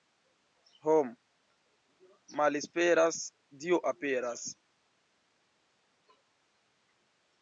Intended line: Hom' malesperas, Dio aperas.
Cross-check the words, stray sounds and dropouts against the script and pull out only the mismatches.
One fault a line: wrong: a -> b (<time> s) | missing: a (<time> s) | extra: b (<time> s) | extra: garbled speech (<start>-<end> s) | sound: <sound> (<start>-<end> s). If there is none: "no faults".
no faults